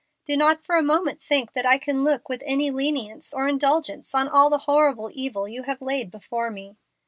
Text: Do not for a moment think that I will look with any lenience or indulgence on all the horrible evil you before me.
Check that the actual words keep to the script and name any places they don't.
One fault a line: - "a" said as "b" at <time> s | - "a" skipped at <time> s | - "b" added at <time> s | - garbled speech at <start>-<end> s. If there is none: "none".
- "will" said as "can" at 1.8 s
- "have laid" added at 5.6 s